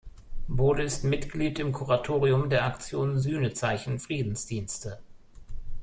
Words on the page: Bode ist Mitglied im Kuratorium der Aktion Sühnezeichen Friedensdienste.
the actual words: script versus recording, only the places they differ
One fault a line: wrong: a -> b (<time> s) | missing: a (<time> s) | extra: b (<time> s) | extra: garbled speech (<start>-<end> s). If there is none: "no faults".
no faults